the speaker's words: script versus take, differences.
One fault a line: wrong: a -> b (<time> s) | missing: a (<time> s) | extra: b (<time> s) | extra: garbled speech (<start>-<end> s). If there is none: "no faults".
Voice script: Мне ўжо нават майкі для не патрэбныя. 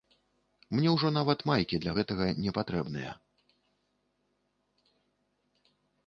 extra: гэтага (2.0 s)